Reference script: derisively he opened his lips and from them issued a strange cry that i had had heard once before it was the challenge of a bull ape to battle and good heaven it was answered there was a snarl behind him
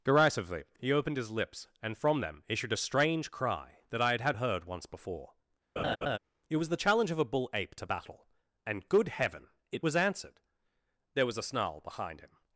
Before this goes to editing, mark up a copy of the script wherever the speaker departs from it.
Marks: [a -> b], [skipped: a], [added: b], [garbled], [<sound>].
derisively he opened his lips and from them issued a strange cry that i had had heard once before [laugh] it was the challenge of a bull ape to battle and good heaven it was answered there was a snarl behind him